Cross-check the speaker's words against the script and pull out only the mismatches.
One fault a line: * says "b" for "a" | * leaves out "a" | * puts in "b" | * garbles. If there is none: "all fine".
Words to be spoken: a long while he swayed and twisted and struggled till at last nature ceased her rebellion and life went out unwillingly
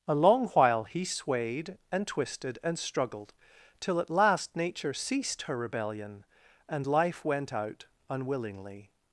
all fine